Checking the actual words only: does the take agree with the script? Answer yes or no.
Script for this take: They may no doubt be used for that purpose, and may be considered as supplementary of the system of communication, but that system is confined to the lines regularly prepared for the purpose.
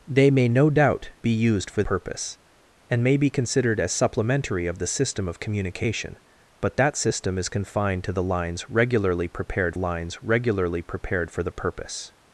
no